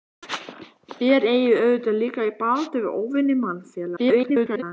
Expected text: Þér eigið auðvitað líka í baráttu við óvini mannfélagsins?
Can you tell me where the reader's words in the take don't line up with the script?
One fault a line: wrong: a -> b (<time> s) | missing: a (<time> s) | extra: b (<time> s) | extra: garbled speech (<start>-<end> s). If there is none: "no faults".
extra: garbled speech (4.0-4.6 s)